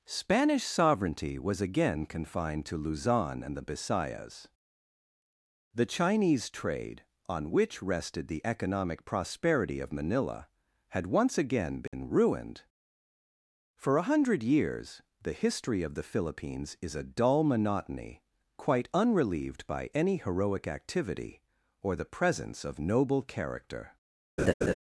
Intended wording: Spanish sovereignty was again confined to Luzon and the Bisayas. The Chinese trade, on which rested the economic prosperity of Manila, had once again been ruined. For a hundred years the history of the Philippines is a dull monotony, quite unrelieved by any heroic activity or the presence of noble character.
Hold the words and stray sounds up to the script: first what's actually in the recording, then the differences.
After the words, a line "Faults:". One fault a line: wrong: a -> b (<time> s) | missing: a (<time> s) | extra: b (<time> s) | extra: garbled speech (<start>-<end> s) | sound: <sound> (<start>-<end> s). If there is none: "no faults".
Spanish sovereignty was again confined to Luzon and the Bisayas. The Chinese trade, on which rested the economic prosperity of Manila, had once again been ruined. For a hundred years the history of the Philippines is a dull monotony, quite unrelieved by any heroic activity or the presence of noble character.
Faults:
sound: dropout (11.9-11.9 s)
sound: laugh (24.4-24.7 s)